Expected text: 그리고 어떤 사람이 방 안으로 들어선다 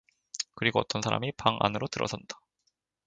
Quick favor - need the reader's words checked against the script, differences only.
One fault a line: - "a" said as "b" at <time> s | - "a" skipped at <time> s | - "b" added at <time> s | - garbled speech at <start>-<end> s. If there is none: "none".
none